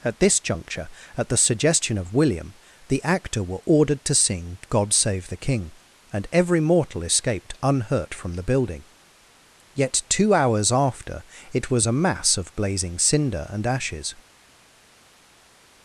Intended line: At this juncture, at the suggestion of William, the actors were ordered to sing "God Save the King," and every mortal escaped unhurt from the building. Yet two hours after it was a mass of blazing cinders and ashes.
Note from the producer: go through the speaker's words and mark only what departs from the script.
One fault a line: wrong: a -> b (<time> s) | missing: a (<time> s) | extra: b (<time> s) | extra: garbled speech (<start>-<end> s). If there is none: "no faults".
wrong: actors -> actor (3.0 s)
wrong: cinders -> cinder (13.0 s)